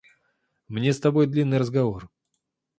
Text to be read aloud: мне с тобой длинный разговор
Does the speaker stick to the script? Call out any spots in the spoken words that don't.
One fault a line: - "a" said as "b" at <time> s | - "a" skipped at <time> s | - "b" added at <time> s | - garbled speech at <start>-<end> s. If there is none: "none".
none